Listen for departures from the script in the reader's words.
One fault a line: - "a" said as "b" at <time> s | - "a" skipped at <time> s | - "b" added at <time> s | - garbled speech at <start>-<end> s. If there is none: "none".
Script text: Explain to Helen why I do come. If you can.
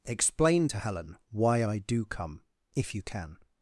none